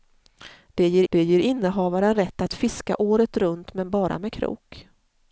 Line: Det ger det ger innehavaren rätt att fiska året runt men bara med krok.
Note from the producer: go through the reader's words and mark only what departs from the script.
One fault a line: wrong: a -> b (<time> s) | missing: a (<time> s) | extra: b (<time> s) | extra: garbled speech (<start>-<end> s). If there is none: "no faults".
no faults